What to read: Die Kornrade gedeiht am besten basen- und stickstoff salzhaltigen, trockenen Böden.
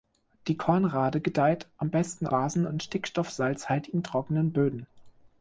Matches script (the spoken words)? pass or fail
pass